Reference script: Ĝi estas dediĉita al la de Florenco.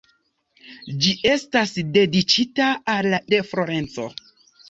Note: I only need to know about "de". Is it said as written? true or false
true